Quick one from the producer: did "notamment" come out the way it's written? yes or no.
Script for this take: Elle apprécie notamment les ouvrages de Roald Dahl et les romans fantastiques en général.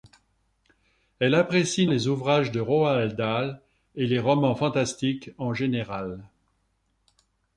no